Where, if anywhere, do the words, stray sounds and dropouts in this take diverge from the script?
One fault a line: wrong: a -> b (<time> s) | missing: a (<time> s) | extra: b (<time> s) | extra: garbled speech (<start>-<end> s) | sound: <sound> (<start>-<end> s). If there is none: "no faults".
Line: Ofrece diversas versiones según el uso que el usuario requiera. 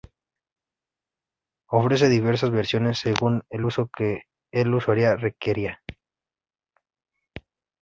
no faults